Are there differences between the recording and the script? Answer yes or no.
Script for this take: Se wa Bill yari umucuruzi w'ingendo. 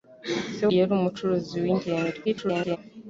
yes